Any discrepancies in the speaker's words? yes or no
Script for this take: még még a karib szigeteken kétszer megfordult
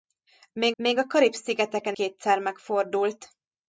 no